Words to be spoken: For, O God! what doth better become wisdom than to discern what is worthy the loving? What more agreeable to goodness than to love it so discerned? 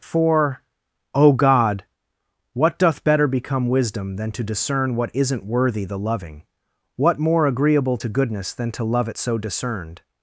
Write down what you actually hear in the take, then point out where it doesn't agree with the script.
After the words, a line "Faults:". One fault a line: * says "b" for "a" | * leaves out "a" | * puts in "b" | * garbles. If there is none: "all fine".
For, O God! what doth better become wisdom than to discern what isn't worthy the loving? What more agreeable to goodness than to love it so discerned?
Faults:
* says "isn't" for "is"